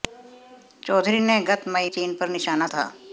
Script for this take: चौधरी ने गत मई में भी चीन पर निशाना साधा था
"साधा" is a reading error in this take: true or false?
true